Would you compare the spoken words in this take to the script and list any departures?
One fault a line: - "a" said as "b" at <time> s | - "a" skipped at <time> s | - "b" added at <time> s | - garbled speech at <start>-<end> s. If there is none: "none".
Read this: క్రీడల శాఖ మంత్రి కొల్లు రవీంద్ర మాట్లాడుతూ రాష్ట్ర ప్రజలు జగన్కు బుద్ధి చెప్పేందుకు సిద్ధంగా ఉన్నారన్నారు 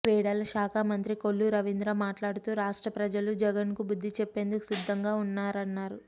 none